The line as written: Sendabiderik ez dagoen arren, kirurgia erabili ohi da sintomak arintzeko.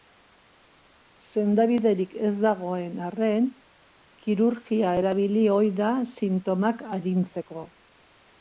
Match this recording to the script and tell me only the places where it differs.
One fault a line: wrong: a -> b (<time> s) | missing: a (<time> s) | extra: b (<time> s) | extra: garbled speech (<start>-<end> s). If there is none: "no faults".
no faults